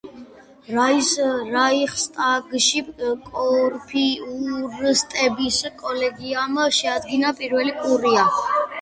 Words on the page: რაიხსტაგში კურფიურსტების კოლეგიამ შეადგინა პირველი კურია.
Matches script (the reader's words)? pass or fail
pass